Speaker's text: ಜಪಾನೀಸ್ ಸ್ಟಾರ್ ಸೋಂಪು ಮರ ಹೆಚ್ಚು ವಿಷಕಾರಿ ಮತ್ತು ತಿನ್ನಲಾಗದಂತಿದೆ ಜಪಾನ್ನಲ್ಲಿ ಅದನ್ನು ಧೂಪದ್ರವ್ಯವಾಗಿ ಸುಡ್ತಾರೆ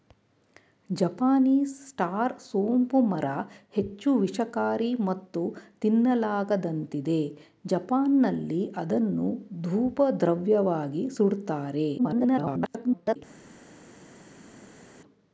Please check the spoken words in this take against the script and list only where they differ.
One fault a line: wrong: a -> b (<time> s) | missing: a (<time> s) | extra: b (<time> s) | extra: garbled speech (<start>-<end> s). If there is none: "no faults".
extra: garbled speech (12.0-13.2 s)